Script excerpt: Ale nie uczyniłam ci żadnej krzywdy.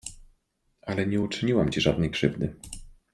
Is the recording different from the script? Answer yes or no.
no